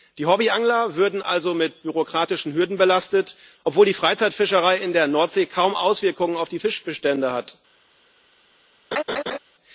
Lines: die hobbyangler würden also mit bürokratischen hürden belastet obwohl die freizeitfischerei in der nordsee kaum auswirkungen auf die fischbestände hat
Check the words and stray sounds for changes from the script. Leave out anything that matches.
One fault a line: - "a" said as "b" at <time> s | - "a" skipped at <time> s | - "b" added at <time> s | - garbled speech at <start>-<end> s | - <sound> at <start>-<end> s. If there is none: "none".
- laugh at 8.9-9.4 s